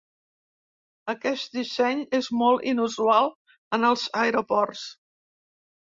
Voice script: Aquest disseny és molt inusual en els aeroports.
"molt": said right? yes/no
yes